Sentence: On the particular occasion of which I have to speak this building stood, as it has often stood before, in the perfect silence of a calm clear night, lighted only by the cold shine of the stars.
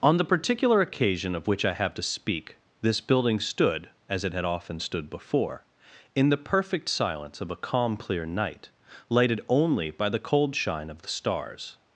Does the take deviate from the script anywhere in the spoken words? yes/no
yes